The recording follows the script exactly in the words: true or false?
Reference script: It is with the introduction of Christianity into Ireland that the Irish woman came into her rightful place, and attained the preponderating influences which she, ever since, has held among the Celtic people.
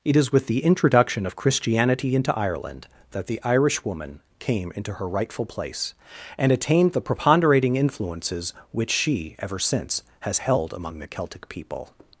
true